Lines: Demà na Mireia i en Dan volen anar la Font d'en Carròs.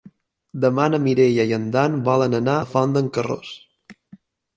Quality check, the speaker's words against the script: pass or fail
pass